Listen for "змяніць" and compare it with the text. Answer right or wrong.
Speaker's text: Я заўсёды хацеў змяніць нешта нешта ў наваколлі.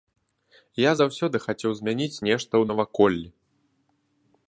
right